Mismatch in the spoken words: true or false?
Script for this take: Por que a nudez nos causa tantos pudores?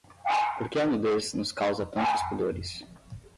false